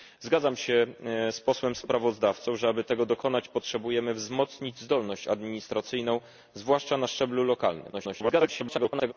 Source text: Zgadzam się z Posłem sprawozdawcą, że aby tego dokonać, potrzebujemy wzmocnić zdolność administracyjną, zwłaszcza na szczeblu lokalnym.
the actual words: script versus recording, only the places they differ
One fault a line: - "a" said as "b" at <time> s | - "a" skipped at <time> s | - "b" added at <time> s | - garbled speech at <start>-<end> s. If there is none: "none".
- garbled speech at 7.9-9.1 s